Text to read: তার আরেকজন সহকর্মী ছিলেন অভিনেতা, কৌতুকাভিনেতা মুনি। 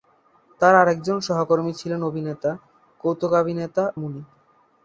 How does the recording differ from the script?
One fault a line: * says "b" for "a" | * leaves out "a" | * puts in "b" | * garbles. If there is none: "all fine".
all fine